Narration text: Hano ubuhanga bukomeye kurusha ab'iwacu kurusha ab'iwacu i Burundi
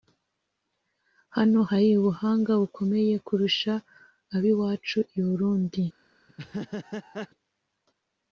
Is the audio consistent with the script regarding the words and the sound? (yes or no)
no